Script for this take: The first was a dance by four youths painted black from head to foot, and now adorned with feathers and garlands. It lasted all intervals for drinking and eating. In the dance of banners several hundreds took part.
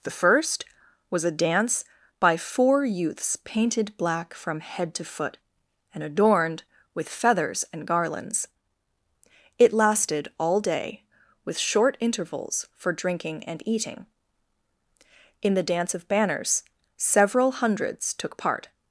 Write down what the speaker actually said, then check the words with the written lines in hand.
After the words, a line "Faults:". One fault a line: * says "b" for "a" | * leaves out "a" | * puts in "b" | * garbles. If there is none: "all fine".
The first was a dance by four youths painted black from head to foot, and adorned with feathers and garlands. It lasted all day, with short intervals for drinking and eating. In the dance of banners several hundreds took part.
Faults:
* leaves out "now"
* puts in "day with short"